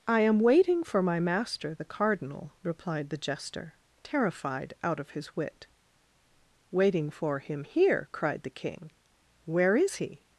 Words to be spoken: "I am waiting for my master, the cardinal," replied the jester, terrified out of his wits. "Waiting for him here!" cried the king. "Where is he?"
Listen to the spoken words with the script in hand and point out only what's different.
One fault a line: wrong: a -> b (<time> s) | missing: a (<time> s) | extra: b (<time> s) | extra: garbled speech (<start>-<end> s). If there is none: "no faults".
wrong: wits -> wit (5.3 s)